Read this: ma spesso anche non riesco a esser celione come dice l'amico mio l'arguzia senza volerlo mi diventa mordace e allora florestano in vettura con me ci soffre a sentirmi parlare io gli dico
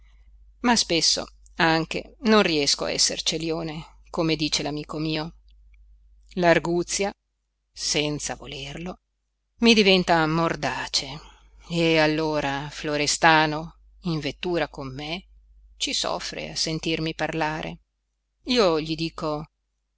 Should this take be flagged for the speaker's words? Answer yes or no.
no